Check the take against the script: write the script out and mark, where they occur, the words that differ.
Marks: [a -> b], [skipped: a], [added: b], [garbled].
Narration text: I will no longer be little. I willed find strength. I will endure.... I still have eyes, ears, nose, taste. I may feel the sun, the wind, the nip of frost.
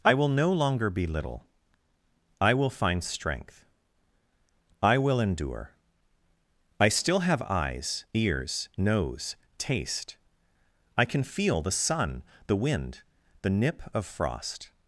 I will no longer be little. I [willed -> will] find strength. I will endure.... I still have eyes, ears, nose, taste. I [may -> can] feel the sun, the wind, the nip of frost.